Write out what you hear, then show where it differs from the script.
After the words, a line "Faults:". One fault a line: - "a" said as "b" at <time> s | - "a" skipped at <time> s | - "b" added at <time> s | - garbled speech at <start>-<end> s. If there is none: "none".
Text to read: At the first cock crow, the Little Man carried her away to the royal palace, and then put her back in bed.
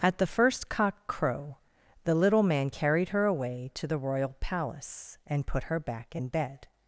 At the first cock crow, the Little Man carried her away to the royal palace, and put her back in bed.
Faults:
- "then" skipped at 5.4 s